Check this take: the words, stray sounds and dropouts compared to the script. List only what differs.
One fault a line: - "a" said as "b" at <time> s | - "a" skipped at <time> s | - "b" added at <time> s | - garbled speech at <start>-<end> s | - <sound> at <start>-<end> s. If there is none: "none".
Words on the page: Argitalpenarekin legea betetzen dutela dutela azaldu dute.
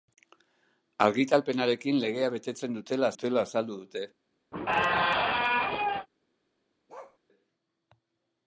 - squeak at 4.5-6.1 s
- bark at 6.9-7.2 s